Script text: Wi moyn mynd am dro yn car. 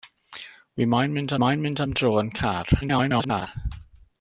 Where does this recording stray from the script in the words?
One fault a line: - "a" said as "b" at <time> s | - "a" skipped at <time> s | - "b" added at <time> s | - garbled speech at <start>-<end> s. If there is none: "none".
- "moyn mynd" added at 1.4 s
- garbled speech at 2.8-3.5 s